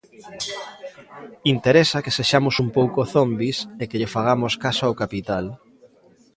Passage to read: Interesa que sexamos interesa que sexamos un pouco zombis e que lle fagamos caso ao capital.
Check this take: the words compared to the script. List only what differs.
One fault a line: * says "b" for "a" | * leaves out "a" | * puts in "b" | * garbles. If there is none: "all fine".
* leaves out "interesa que sexamos"